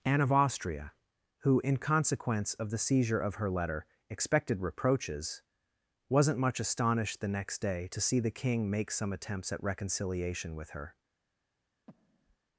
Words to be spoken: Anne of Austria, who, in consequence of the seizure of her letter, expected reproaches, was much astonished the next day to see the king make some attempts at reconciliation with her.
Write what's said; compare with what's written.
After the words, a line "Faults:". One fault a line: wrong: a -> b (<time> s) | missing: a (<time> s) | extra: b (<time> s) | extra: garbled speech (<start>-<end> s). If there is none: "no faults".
Anne of Austria, who, in consequence of the seizure of her letter, expected reproaches, wasn't much astonished the next day to see the king make some attempts at reconciliation with her.
Faults:
wrong: was -> wasn't (6.1 s)